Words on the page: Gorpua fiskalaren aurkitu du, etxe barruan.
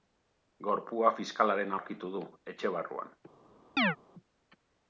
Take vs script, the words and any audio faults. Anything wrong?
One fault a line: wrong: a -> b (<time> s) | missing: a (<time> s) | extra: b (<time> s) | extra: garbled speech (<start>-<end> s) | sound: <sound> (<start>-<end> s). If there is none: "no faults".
sound: chirp (3.8-4.0 s)